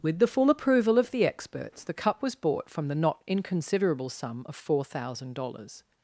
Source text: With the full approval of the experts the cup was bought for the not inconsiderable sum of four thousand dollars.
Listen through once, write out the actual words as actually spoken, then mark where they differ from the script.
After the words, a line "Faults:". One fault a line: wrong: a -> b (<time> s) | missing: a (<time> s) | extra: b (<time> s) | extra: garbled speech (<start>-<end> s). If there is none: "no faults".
With the full approval of the experts the cup was bought from the not inconsiderable sum of four thousand dollars.
Faults:
wrong: for -> from (2.7 s)